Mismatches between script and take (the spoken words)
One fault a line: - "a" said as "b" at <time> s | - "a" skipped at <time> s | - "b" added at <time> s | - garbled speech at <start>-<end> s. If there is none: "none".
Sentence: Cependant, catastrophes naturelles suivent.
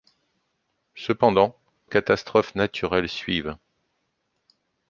none